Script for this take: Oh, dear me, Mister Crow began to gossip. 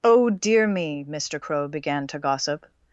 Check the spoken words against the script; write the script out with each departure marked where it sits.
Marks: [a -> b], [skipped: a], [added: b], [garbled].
Oh, dear me, Mister Crow began to gossip.